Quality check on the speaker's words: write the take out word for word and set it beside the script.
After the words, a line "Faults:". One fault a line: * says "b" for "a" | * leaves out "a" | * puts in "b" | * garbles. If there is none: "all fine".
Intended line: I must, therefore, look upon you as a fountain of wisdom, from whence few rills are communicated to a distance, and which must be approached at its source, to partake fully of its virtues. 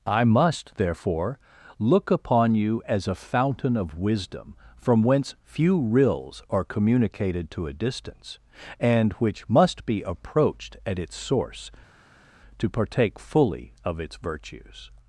I must, therefore, look upon you as a fountain of wisdom, from whence few rills are communicated to a distance, and which must be approached at its source, to partake fully of its virtues.
Faults:
all fine